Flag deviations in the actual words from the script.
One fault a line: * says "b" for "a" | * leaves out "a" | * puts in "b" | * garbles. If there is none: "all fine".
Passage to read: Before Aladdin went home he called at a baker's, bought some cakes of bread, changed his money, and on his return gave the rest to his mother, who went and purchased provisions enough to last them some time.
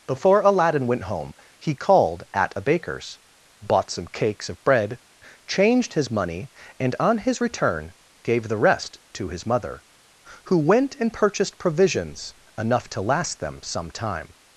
all fine